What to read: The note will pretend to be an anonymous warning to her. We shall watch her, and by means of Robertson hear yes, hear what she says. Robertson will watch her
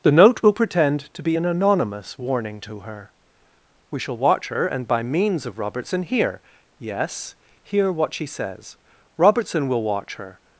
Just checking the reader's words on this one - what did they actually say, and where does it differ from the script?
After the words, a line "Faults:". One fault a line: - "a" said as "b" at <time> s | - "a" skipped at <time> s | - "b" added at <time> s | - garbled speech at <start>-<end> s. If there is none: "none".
The note will pretend to be an anonymous warning to her. We shall watch her, and by means of Robertson hear yes, hear what she says. Robertson will watch her
Faults:
none